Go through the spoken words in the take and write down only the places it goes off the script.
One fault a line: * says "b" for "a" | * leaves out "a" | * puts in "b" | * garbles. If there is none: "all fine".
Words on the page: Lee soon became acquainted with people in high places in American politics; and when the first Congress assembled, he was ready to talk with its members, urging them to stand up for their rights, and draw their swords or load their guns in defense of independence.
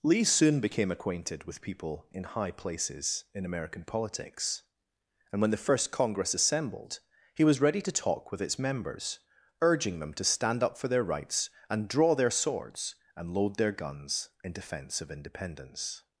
* says "and" for "or"